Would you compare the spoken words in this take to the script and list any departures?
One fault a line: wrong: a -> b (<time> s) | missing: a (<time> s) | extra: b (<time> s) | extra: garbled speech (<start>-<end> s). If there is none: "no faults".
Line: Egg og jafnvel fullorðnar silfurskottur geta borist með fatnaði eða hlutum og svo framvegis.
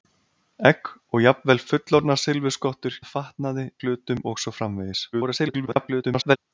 missing: geta borist (3.0 s)
missing: eða (3.7 s)
extra: garbled speech (5.1-6.4 s)